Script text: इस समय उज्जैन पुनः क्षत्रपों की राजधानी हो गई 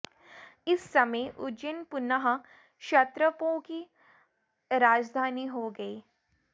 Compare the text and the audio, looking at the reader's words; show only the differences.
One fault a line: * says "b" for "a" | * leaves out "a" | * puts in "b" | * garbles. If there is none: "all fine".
all fine